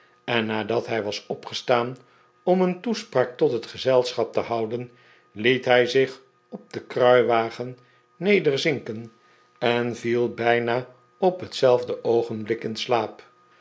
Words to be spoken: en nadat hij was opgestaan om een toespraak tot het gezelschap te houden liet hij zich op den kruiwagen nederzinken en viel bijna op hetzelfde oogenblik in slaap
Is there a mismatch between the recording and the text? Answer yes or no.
no